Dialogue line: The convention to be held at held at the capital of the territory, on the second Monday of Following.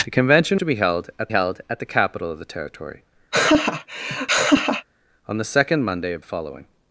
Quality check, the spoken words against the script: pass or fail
pass